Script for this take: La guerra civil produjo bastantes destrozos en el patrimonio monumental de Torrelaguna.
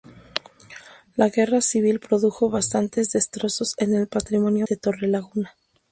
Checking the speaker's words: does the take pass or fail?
fail